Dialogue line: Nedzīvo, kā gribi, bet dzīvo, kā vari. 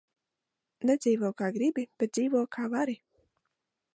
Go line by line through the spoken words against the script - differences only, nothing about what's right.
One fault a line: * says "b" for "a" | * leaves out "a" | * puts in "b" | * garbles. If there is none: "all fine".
all fine